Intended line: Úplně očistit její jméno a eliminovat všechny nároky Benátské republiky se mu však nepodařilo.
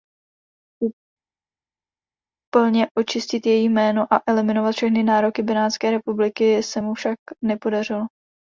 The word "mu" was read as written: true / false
true